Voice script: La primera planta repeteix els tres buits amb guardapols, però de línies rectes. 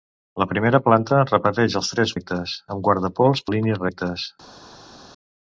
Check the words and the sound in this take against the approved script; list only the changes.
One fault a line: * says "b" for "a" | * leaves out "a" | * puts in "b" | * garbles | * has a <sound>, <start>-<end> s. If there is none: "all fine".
* says "rectes" for "buits"
* leaves out "però"